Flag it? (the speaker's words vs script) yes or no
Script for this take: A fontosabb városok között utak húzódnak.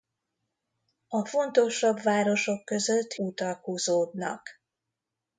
no